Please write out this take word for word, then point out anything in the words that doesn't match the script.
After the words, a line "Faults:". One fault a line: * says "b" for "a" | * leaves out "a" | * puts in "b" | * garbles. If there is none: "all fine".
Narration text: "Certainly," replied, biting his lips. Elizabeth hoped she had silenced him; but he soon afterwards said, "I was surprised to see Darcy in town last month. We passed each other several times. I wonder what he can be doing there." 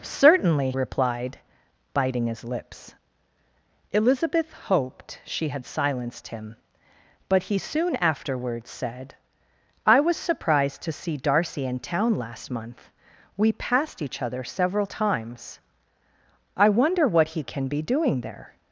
"Certainly," replied, biting his lips. Elizabeth hoped she had silenced him; but he soon afterwards said, "I was surprised to see Darcy in town last month. We passed each other several times. I wonder what he can be doing there."
Faults:
all fine